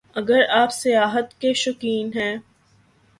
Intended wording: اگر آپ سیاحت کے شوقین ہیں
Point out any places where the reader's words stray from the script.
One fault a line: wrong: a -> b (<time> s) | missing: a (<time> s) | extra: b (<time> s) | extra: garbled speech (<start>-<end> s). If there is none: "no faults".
no faults